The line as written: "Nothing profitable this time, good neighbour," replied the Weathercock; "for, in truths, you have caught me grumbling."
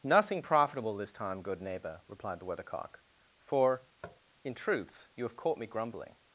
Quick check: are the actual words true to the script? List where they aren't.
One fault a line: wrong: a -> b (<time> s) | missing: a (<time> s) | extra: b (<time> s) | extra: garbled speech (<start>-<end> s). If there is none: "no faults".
no faults